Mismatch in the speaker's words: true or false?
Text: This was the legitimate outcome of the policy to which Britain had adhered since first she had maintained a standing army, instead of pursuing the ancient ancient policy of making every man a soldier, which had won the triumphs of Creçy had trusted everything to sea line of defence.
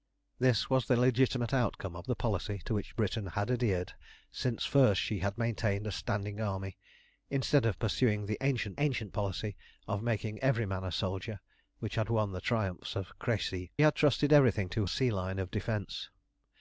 false